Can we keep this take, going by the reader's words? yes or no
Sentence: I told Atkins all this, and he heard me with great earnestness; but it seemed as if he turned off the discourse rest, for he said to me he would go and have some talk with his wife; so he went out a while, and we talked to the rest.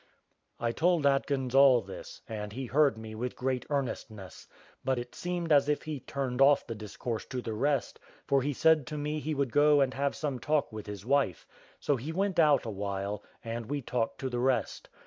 no